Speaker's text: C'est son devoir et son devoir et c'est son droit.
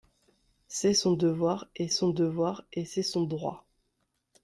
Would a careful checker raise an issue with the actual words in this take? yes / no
no